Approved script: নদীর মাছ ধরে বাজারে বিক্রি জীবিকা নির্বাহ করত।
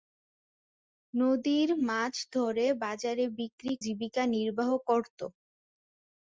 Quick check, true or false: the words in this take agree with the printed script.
true